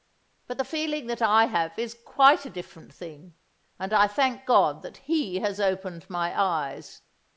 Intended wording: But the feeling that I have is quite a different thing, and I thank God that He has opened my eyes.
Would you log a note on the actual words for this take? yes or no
no